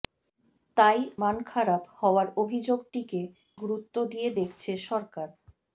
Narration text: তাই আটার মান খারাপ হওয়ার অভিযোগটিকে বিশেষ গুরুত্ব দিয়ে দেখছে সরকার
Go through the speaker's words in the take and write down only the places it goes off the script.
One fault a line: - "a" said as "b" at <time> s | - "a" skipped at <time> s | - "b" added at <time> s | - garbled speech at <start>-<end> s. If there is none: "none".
- "আটার" skipped at 1.0 s
- "বিশেষ" skipped at 3.2 s